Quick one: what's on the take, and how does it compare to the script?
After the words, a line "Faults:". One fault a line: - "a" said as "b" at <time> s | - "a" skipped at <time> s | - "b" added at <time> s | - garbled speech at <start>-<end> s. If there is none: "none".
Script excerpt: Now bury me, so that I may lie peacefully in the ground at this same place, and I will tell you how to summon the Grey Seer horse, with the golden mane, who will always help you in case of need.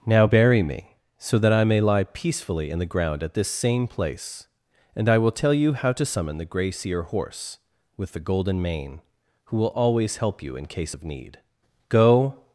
Now bury me, so that I may lie peacefully in the ground at this same place, and I will tell you how to summon the Grey Seer horse, with the golden mane, who will always help you in case of need. Go
Faults:
- "Go" added at 11.9 s